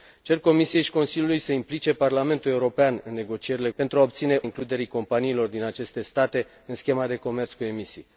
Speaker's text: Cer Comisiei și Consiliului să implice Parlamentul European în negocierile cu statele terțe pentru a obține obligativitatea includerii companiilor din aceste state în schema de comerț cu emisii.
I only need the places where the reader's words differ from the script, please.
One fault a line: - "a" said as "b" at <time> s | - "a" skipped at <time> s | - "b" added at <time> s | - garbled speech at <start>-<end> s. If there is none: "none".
- "cu statele terțe" skipped at 3.7 s
- "obligativitatea" skipped at 4.4 s